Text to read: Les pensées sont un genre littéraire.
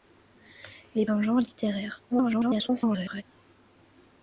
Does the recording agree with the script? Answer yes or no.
no